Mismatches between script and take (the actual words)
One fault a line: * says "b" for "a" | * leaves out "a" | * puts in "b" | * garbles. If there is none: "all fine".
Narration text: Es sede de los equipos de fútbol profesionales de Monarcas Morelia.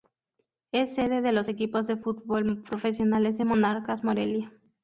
all fine